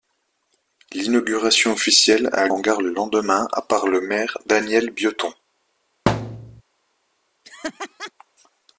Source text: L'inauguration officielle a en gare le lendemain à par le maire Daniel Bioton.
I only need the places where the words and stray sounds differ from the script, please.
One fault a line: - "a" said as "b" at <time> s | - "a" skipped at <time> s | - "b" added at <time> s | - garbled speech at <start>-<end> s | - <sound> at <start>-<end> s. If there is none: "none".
- thud at 6.1-6.6 s
- laugh at 7.4-8.1 s